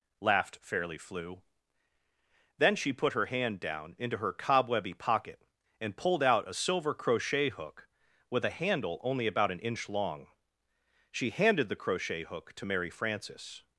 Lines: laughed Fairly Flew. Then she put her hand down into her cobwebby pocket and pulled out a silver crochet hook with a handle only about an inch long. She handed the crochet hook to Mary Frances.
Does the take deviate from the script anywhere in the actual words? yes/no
no